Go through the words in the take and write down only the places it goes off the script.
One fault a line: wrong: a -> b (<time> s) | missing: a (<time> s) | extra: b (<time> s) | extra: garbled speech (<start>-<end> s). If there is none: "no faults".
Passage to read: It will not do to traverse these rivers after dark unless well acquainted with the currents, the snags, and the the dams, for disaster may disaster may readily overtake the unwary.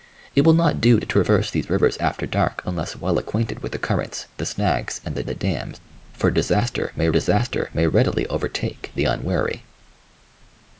no faults